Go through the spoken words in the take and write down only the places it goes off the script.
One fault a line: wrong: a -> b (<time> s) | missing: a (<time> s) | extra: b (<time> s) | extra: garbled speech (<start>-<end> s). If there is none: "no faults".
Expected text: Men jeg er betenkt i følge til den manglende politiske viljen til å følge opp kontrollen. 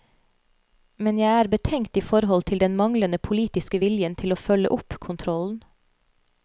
wrong: følge -> forhold (2.0 s)